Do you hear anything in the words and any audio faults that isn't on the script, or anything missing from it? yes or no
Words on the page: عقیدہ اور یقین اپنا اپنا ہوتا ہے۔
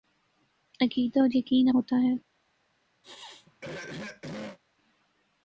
yes